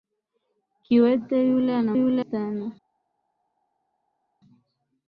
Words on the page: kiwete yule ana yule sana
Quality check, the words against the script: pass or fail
pass